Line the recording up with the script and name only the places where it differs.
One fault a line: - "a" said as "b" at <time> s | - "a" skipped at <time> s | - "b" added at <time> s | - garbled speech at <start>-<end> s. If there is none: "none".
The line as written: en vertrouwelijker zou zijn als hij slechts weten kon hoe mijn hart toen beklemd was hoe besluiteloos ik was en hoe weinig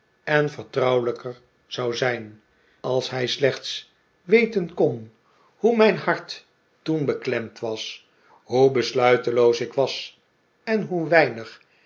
none